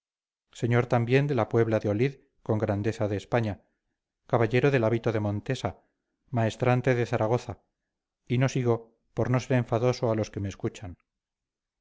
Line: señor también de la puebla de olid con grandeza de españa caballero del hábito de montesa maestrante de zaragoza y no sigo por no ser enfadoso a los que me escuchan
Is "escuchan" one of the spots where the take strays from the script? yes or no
no